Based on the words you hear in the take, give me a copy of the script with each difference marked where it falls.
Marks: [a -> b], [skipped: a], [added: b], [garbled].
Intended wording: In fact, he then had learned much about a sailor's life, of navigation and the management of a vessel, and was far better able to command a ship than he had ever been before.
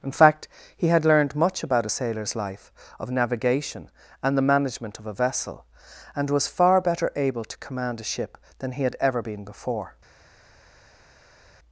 In fact, he [skipped: then] had learned much about a sailor's life, of navigation and the management of a vessel, and was far better able to command a ship than he had ever been before.